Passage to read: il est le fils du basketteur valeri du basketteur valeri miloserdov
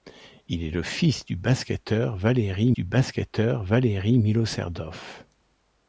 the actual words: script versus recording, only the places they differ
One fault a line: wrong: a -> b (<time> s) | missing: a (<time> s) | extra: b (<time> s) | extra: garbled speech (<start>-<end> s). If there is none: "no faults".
no faults